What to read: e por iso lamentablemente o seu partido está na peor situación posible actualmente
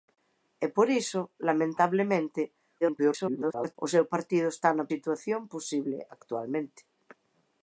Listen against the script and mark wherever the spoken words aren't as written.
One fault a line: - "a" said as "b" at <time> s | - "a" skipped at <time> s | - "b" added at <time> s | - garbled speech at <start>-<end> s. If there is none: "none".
- garbled speech at 2.8-3.8 s
- "peor" skipped at 4.9 s